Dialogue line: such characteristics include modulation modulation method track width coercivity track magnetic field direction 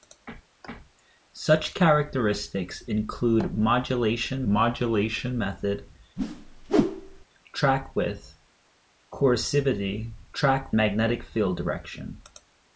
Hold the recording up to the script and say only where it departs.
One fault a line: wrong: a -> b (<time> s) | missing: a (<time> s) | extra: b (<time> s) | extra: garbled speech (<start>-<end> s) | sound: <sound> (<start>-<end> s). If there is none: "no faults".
sound: whoosh (6.2-7.2 s)